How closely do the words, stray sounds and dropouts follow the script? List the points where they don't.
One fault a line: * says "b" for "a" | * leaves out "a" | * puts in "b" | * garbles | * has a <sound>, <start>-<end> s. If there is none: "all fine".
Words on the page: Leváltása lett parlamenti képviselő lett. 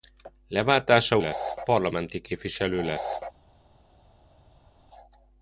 all fine